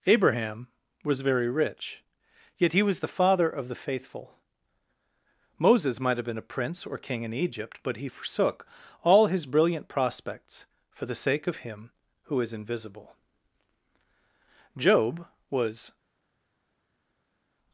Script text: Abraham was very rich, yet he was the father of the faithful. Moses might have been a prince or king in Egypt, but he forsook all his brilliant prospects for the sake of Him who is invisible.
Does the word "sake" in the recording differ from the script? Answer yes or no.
no